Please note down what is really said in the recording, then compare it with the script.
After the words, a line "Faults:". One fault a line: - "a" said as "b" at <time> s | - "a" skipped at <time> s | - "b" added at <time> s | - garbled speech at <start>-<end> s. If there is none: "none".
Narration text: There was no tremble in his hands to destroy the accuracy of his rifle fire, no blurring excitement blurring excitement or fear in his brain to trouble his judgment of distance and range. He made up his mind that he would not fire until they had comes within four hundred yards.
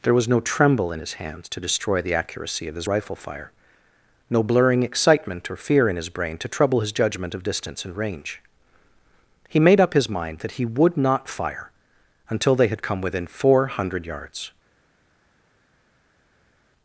There was no tremble in his hands to destroy the accuracy of his rifle fire, no blurring excitement or fear in his brain to trouble his judgment of distance and range. He made up his mind that he would not fire until they had come within four hundred yards.
Faults:
- "blurring excitement" skipped at 5.5 s
- "comes" said as "come" at 12.8 s